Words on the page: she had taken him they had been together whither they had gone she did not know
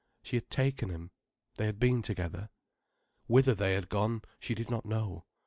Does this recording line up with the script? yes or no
yes